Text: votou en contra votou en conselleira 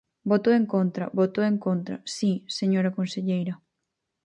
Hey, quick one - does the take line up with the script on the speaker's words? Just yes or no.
no